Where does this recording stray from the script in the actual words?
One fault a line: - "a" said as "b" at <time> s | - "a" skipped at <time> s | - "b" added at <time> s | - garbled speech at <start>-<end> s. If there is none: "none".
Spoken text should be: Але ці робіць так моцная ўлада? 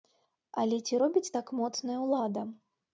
none